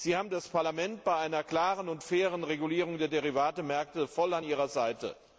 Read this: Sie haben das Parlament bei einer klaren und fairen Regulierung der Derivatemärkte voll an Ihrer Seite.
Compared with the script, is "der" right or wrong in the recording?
right